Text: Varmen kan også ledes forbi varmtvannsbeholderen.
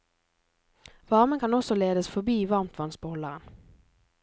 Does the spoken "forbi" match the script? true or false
true